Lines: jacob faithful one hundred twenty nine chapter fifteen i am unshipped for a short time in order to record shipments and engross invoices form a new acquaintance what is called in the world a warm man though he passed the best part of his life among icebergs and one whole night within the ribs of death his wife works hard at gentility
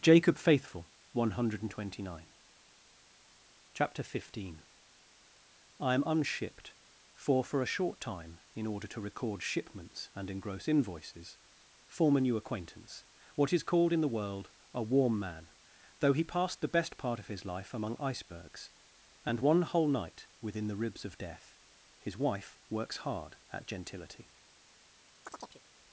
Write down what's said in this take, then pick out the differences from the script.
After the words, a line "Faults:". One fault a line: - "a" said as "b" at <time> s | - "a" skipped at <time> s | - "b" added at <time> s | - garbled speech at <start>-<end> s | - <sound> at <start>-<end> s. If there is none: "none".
jacob faithful one hundred twenty nine chapter fifteen i am unshipped for for a short time in order to record shipments and engross invoices form a new acquaintance what is called in the world a warm man though he passed the best part of his life among icebergs and one whole night within the ribs of death his wife works hard at gentility
Faults:
- "for" added at 7.4 s
- chirp at 25.3-25.6 s